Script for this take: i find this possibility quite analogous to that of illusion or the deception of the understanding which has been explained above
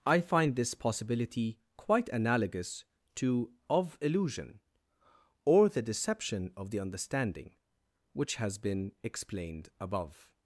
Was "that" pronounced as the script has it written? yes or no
no